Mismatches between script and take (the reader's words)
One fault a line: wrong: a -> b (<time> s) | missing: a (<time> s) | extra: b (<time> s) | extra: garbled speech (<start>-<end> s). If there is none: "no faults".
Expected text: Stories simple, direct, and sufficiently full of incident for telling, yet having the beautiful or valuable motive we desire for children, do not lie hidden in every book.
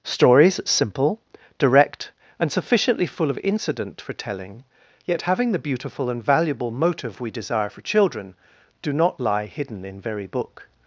wrong: or -> and (6.1 s)
wrong: every -> very (10.0 s)